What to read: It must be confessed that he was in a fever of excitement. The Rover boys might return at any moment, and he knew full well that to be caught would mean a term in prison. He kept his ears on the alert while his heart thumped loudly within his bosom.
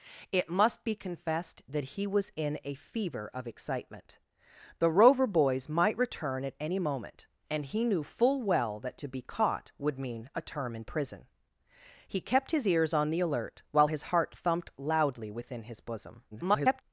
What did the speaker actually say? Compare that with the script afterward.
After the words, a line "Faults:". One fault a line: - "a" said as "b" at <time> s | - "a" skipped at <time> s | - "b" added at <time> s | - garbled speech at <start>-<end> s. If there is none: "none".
It must be confessed that he was in a fever of excitement. The Rover boys might return at any moment, and he knew full well that to be caught would mean a term in prison. He kept his ears on the alert while his heart thumped loudly within his bosom. [garbled]
Faults:
- garbled speech at 16.3-16.8 s